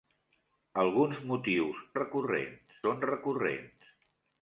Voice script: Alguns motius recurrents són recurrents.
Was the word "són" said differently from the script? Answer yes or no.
no